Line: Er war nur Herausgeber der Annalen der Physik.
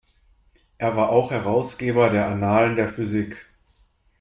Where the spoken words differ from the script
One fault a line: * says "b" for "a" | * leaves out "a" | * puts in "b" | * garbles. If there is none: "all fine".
* says "auch" for "nur"